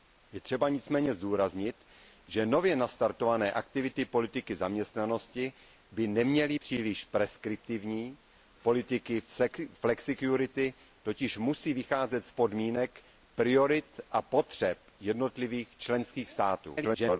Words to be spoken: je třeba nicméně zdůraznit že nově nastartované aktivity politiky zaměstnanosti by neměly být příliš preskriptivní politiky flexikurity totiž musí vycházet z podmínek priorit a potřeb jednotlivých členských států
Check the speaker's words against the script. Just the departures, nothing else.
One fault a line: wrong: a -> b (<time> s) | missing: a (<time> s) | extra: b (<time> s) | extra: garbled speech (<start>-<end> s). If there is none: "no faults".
missing: být (6.6 s)
extra: garbled speech (16.8-17.2 s)